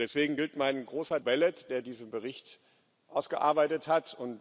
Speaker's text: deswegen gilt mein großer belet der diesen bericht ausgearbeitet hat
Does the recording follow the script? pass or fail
pass